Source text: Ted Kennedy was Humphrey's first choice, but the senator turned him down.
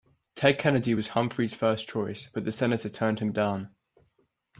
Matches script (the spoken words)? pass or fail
pass